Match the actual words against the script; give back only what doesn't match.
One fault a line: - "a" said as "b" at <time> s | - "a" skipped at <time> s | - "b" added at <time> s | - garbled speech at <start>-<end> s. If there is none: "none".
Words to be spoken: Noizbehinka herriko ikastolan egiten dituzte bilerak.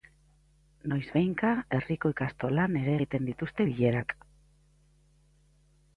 - "ere" added at 2.8 s